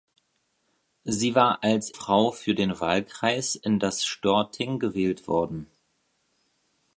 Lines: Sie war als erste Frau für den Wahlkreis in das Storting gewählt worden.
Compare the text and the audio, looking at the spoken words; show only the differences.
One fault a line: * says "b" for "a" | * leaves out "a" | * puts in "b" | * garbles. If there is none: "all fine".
* leaves out "erste"